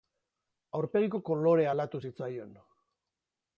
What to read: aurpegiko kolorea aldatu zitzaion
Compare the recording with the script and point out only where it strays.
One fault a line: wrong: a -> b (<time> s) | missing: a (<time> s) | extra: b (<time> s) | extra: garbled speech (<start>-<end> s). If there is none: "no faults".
no faults